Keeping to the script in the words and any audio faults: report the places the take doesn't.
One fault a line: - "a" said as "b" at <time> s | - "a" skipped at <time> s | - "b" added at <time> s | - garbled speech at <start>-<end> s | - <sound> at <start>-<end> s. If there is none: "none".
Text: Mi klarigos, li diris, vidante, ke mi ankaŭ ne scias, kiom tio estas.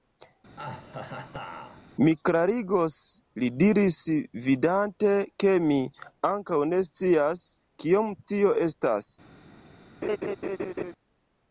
- laugh at 0.6-1.9 s
- laugh at 10.0-10.9 s